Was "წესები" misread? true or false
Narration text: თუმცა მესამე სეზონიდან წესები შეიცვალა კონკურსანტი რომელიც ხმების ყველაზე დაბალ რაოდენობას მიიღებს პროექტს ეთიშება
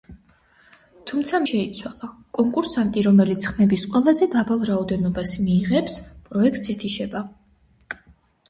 true